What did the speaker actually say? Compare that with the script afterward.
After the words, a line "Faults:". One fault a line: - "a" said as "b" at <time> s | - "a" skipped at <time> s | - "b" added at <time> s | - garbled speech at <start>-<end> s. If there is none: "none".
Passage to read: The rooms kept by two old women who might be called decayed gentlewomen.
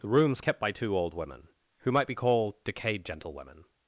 The rooms kept by two old women who might be called decayed gentlewomen.
Faults:
none